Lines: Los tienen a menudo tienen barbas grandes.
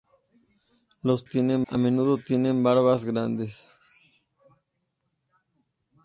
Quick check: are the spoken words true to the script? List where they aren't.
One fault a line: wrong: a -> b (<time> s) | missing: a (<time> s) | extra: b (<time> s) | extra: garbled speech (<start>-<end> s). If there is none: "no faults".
no faults